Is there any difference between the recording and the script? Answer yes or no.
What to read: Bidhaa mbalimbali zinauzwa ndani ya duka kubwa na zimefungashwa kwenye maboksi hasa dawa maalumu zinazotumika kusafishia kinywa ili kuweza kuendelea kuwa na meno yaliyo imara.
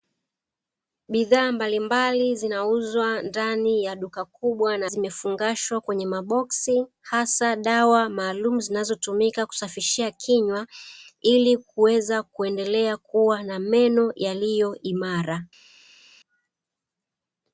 no